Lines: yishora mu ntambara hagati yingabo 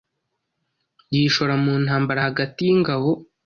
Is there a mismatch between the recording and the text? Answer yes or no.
no